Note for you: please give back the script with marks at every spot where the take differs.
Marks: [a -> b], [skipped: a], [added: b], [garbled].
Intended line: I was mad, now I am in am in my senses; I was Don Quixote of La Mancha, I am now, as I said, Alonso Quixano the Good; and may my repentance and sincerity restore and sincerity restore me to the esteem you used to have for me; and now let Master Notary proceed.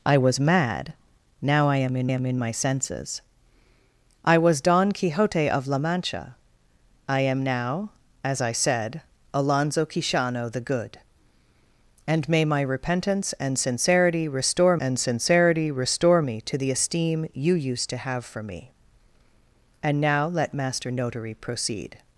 I was mad, now I am in am in my senses; I was Don Quixote of La Mancha, I am now, as I said, Alonso Quixano the Good; and may my repentance and sincerity restore and sincerity restore me to the esteem you used to have for me; and now let Master Notary proceed.